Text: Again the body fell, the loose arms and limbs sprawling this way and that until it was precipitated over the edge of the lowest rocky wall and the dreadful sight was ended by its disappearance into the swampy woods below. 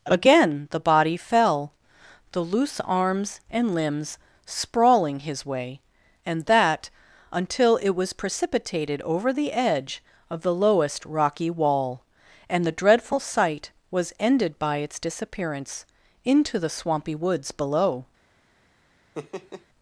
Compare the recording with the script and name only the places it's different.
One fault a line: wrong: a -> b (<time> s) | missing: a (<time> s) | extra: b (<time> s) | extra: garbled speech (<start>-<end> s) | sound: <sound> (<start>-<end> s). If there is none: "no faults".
wrong: this -> his (5.2 s)
sound: laugh (19.1-19.7 s)